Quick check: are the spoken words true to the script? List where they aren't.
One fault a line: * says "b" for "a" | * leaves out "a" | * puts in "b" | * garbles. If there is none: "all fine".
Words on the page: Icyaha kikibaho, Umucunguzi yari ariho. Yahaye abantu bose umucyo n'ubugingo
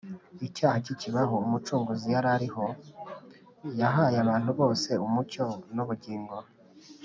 all fine